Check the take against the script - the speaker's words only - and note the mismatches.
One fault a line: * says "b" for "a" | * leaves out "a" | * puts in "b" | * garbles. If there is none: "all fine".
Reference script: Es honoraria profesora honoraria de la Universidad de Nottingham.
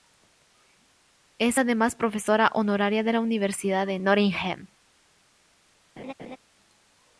* says "además" for "honoraria"